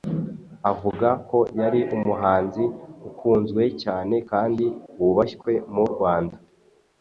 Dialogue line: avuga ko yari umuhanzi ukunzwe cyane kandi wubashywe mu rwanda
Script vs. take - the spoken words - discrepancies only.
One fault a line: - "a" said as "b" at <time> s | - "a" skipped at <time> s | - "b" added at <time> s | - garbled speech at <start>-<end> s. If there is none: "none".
none